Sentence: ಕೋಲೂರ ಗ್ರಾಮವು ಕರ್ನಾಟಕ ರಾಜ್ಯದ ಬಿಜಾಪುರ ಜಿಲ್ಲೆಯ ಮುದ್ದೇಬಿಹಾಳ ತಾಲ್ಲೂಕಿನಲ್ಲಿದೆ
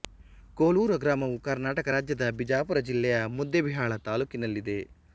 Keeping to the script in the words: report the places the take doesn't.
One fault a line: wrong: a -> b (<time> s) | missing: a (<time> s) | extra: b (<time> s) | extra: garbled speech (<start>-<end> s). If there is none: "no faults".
no faults